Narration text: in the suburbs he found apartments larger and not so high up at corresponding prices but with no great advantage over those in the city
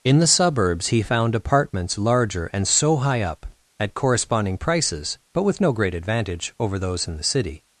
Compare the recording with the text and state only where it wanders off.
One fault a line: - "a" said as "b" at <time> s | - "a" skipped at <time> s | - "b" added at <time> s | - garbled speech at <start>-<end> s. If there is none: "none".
- "not" skipped at 2.7 s